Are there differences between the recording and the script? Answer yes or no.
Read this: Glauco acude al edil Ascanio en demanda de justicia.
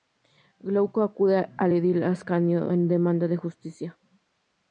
no